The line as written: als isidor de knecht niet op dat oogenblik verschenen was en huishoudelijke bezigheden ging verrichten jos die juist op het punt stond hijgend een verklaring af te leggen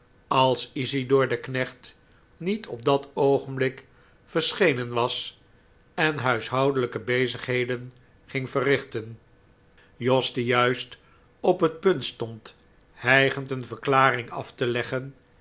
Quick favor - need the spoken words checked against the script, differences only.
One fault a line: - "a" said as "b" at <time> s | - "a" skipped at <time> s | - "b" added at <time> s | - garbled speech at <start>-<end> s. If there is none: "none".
none